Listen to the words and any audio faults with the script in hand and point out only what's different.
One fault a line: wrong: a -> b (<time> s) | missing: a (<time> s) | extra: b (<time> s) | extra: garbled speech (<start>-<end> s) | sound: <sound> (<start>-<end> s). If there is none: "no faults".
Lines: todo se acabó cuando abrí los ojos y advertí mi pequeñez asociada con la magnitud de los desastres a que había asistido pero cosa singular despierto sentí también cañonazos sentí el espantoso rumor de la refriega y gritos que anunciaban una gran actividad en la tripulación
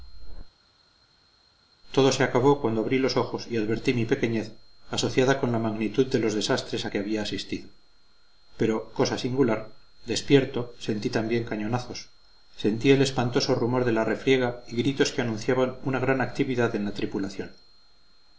no faults